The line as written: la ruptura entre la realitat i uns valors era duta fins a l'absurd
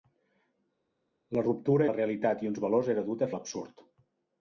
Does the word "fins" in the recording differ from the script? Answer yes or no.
yes